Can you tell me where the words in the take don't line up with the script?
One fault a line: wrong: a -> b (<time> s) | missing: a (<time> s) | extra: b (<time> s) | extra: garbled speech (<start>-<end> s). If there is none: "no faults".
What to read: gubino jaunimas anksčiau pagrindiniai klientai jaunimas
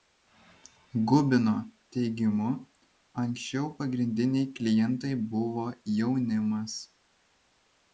wrong: jaunimas -> teigimu (1.9 s)
extra: buvo (5.3 s)